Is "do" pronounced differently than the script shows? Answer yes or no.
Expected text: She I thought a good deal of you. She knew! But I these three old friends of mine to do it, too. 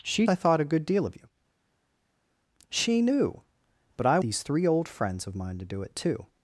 no